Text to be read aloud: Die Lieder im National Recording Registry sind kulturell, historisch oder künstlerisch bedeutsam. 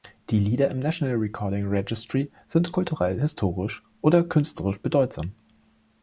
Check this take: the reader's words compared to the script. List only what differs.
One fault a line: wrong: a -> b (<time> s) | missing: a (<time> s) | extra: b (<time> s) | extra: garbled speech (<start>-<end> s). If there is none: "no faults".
no faults